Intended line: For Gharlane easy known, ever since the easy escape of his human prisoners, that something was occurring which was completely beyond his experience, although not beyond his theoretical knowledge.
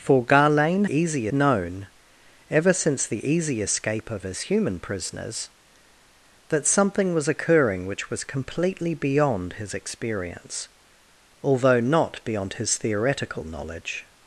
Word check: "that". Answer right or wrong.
right